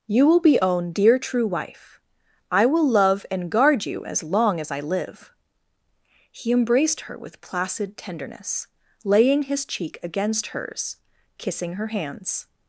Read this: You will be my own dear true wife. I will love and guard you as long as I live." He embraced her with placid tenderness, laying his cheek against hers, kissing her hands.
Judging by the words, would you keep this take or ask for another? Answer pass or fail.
fail